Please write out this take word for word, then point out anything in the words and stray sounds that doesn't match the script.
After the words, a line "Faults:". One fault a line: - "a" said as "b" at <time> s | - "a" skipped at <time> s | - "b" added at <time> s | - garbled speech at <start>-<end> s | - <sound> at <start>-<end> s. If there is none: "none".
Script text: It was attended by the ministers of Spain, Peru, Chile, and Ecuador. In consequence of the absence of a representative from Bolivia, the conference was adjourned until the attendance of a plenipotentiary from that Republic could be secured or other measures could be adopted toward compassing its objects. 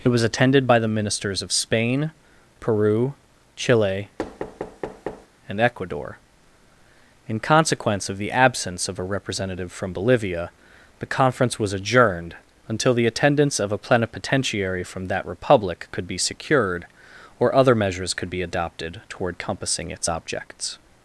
It was attended by the ministers of Spain, Peru, Chile, and Ecuador. In consequence of the absence of a representative from Bolivia, the conference was adjourned until the attendance of a plenipotentiary from that Republic could be secured or other measures could be adopted toward compassing its objects.
Faults:
- thud at 4.2-5.3 s